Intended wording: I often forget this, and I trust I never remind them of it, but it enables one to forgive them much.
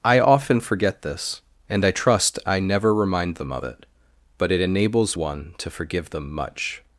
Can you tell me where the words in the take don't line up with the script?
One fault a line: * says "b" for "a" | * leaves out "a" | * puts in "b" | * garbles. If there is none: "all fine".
all fine